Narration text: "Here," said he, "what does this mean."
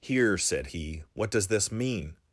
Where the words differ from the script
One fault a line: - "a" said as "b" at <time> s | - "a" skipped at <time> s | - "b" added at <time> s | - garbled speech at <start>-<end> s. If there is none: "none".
none